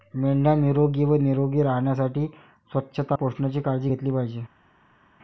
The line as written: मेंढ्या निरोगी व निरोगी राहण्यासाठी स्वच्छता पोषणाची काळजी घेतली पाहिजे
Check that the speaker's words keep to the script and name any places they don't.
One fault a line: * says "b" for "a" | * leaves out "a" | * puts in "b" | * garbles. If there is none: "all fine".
all fine